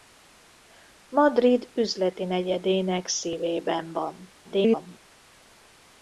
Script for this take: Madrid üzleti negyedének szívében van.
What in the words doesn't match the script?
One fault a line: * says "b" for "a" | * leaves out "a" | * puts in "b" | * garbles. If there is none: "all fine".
* garbles